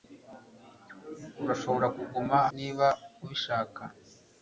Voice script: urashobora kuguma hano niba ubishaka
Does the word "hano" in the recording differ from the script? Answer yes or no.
yes